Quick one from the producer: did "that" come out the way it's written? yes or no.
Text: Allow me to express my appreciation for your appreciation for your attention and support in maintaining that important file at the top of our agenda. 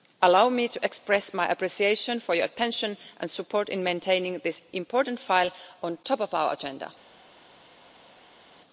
no